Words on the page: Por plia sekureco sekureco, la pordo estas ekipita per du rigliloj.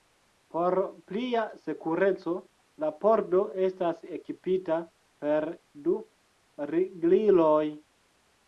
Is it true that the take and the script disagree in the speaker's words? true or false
true